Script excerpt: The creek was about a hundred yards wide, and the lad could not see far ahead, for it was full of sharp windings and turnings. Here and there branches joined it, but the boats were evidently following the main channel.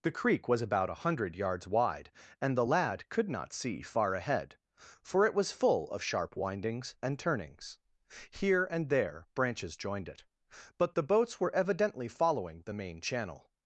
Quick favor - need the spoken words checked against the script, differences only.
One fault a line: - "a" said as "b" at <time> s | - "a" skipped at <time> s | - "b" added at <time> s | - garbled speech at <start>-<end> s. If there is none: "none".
none